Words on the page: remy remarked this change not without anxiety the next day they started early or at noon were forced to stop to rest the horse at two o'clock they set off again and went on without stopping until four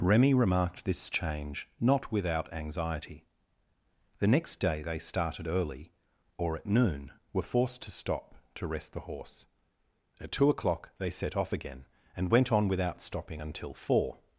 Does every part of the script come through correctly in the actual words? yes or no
yes